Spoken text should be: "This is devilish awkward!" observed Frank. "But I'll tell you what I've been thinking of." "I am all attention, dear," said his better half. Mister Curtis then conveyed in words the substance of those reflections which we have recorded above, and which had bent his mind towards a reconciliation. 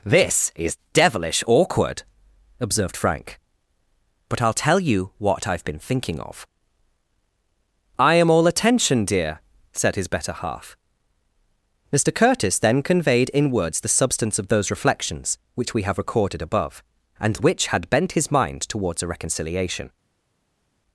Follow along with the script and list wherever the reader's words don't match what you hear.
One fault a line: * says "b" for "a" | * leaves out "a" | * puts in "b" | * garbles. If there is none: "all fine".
all fine